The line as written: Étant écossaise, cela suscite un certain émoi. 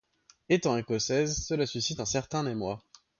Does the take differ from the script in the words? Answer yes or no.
no